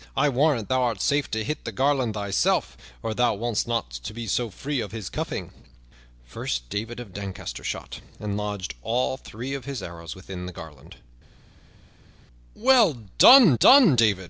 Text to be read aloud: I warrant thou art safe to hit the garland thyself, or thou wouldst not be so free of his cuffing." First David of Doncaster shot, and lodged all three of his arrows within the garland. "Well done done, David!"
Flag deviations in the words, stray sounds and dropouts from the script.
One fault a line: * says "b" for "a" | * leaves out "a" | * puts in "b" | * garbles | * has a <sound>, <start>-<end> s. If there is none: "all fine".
all fine